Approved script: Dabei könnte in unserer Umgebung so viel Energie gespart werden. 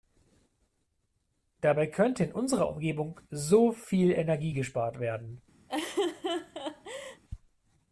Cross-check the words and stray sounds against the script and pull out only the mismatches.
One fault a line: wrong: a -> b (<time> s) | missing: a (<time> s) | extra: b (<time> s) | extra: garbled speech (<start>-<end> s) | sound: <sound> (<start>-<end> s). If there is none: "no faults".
sound: laugh (5.7-7.2 s)